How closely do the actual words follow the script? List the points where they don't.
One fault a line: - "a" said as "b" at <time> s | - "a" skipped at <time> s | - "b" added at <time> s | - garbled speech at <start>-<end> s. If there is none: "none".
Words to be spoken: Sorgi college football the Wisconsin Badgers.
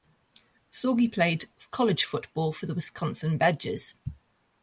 - "played" added at 1.1 s
- "for" added at 2.5 s